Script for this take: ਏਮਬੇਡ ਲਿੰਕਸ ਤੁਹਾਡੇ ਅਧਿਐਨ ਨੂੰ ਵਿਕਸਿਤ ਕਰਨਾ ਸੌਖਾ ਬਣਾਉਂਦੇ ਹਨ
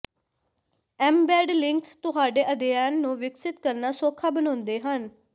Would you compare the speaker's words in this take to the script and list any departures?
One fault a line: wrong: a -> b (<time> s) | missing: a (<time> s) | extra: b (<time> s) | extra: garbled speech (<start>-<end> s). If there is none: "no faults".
no faults